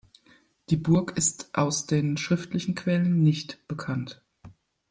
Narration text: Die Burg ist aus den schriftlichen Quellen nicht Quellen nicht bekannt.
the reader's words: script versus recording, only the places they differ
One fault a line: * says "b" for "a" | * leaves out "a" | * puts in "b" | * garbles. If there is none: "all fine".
* leaves out "Quellen nicht"